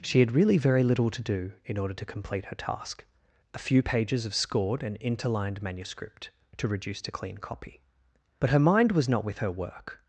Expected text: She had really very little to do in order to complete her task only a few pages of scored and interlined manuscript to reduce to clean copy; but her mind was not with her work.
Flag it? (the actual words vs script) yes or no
yes